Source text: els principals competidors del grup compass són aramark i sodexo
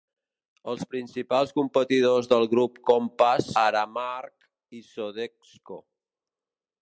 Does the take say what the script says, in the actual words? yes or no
no